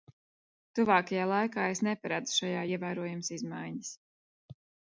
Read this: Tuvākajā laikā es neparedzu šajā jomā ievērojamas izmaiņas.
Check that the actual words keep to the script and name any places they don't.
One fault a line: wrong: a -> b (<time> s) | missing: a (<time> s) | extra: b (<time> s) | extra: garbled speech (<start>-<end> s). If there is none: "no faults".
missing: jomā (2.6 s)